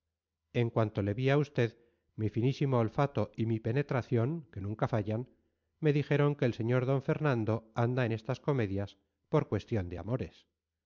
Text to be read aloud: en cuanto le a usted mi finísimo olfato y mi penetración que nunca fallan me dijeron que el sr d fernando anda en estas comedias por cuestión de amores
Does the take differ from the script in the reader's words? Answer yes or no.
yes